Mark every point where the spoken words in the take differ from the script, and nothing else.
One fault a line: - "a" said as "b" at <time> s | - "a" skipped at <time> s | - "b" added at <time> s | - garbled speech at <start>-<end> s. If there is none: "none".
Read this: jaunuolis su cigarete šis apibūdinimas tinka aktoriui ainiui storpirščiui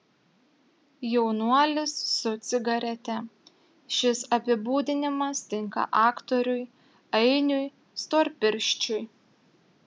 none